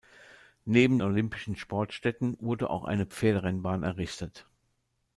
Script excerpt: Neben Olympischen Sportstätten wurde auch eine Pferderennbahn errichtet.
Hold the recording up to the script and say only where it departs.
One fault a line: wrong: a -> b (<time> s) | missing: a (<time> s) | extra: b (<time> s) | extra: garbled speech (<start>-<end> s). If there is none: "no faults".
no faults